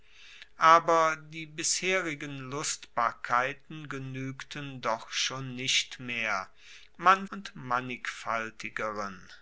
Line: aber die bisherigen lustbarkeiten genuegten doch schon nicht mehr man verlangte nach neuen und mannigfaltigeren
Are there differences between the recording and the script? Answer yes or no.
yes